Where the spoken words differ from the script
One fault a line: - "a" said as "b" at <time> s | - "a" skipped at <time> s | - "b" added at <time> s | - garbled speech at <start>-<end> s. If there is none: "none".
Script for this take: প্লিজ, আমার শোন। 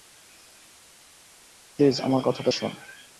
- "কথাটা" added at 2.2 s